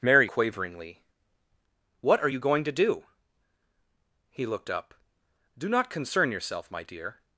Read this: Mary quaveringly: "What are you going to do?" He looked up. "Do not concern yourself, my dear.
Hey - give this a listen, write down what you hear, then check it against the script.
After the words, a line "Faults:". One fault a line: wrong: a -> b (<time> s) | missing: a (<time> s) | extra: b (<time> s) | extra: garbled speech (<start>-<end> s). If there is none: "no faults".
Mary quaveringly: "What are you going to do?" He looked up. "Do not concern yourself, my dear.
Faults:
no faults